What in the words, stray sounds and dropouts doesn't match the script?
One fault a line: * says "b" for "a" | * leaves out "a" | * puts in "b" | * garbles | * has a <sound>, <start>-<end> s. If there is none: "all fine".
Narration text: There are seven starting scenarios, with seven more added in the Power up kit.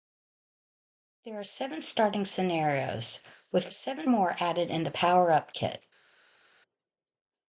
all fine